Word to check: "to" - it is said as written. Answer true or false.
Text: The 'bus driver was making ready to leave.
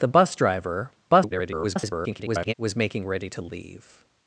true